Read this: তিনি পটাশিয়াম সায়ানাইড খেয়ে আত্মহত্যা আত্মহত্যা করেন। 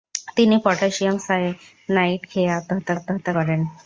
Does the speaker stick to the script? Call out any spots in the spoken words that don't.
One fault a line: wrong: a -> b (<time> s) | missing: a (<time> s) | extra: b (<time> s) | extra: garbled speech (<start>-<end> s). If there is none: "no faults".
no faults